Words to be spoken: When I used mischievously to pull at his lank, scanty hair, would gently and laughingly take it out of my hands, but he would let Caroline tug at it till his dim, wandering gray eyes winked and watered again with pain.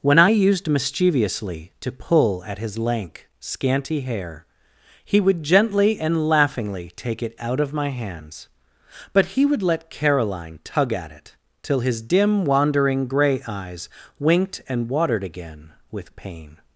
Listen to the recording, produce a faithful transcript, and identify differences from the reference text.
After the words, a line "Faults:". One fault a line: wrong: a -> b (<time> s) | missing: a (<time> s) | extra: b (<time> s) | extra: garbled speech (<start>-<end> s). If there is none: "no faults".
When I used mischievously to pull at his lank, scanty hair, he would gently and laughingly take it out of my hands, but he would let Caroline tug at it till his dim, wandering gray eyes winked and watered again with pain.
Faults:
extra: he (5.0 s)